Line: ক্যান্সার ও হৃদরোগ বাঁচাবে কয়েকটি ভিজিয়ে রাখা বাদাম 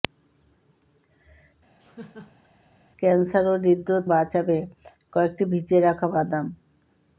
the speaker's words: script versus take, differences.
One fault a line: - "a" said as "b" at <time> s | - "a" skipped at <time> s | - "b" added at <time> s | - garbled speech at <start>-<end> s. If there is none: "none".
none